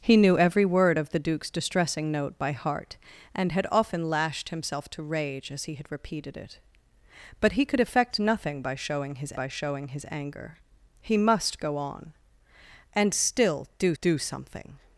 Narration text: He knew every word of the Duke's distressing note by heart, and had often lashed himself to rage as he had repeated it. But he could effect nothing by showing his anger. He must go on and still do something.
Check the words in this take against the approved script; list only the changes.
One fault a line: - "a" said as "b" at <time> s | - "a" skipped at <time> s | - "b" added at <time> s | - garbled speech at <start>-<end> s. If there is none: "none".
- "by showing his" added at 9.3 s
- "do" added at 14.0 s